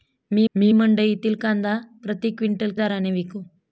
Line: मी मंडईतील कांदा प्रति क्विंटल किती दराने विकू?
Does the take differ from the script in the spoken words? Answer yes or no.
yes